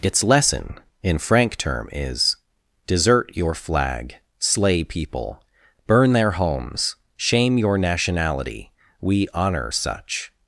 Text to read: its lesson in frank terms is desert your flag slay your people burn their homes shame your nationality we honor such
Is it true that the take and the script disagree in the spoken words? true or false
true